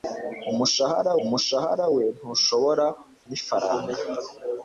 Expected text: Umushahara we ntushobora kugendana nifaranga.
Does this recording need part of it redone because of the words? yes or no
yes